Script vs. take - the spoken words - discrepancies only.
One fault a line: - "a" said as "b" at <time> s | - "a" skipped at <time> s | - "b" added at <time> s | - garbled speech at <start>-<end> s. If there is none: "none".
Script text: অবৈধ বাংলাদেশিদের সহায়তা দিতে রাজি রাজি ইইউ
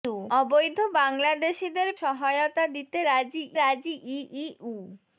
none